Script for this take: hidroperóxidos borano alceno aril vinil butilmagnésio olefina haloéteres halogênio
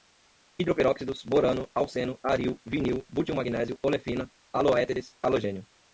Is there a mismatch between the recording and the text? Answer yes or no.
no